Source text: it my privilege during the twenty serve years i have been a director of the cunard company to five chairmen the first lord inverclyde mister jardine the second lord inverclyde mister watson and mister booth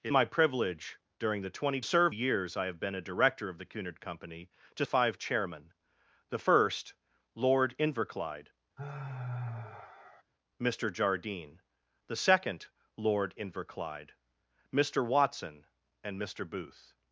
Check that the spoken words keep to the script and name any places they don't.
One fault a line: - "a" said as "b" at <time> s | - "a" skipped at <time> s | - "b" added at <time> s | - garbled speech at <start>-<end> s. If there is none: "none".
none